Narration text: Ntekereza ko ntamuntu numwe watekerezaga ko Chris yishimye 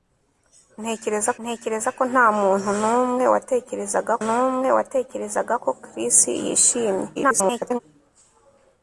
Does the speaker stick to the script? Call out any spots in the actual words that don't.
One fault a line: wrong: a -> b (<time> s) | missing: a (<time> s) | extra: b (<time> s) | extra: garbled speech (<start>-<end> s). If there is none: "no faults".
extra: ntekereza (1.4 s)
extra: numwe watekerezaga (4.3 s)
extra: garbled speech (7.1-7.8 s)